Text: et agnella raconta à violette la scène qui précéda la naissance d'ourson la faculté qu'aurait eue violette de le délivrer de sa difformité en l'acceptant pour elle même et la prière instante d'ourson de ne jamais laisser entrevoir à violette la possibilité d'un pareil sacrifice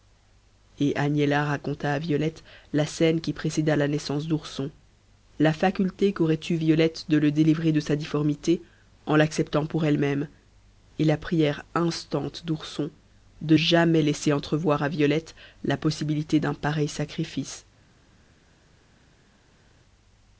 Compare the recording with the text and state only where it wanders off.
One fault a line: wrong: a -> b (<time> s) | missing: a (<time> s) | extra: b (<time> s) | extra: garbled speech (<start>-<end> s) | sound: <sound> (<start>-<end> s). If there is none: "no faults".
missing: ne (13.6 s)